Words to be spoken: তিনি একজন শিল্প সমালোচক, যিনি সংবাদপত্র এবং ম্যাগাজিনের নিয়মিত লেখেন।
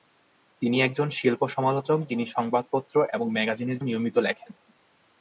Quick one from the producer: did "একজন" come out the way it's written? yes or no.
yes